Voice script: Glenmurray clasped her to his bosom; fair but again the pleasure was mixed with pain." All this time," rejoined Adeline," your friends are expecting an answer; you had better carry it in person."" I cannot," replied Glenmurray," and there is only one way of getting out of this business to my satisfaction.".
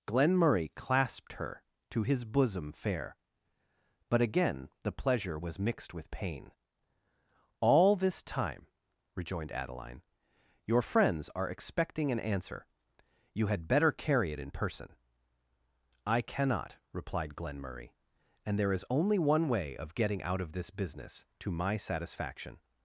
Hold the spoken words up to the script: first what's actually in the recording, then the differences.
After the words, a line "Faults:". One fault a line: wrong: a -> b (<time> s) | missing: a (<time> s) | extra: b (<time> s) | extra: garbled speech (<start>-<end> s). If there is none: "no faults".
Glenmurray clasped her to his bosom; fair but again the pleasure was mixed with pain." All this time," rejoined Adeline," your friends are expecting an answer; you had better carry it in person."" I cannot," replied Glenmurray," and there is only one way of getting out of this business to my satisfaction.".
Faults:
no faults